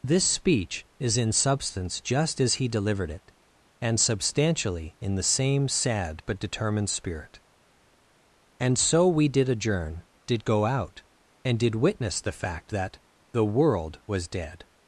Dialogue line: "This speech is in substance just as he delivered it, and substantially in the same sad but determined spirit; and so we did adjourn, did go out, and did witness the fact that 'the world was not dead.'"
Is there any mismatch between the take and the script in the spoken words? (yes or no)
yes